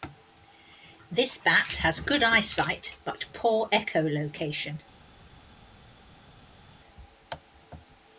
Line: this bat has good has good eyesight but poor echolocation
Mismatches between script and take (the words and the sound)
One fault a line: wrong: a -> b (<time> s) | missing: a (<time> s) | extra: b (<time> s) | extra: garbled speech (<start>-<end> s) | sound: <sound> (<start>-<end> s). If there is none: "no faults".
missing: has good (2.2 s)